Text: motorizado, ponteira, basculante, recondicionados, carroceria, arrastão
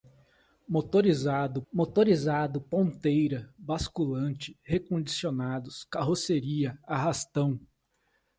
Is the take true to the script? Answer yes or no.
no